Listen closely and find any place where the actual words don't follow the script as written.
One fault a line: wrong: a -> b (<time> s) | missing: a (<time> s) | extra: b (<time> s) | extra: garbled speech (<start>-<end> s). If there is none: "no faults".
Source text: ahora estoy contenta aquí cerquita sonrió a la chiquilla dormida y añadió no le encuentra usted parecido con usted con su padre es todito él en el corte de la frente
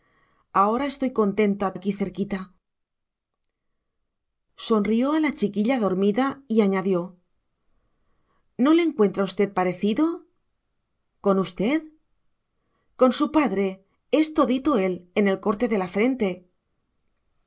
no faults